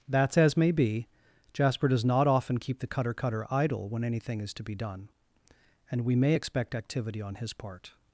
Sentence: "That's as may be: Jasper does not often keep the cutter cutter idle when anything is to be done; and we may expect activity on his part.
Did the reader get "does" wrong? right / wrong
right